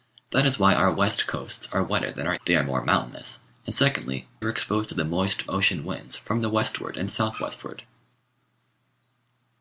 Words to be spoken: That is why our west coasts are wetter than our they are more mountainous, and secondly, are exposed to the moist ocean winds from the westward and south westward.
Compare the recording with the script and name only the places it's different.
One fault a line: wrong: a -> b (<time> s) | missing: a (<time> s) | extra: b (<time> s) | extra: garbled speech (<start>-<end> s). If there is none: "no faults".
no faults